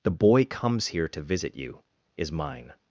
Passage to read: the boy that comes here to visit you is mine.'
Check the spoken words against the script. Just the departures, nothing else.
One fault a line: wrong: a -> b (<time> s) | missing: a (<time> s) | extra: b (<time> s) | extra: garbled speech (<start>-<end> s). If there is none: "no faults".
missing: that (0.5 s)